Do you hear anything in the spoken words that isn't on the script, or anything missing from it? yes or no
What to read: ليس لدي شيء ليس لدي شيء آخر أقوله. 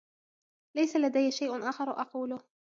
yes